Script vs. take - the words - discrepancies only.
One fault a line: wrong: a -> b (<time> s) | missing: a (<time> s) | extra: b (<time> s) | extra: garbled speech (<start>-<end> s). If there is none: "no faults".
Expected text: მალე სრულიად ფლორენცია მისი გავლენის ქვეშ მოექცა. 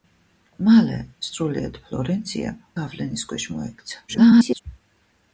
missing: მისი (2.5 s)
extra: garbled speech (4.1-4.6 s)